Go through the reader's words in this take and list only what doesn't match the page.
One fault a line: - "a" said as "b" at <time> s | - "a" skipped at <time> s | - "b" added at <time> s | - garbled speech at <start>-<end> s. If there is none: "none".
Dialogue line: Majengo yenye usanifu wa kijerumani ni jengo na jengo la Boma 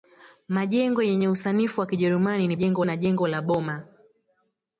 none